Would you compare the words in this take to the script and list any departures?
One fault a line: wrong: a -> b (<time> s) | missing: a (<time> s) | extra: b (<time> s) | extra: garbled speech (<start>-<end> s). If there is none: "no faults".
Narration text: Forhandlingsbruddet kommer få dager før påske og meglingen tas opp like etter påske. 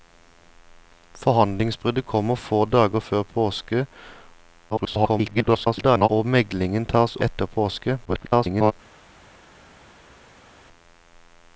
extra: garbled speech (4.7-6.1 s)
missing: opp like (7.1 s)
extra: garbled speech (8.0-8.7 s)